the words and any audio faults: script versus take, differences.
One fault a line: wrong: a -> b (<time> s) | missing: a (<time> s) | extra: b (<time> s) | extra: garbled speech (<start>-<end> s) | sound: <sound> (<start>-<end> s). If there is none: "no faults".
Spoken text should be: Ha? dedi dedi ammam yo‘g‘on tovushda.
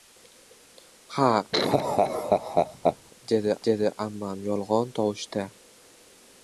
sound: laugh (1.5-3.0 s)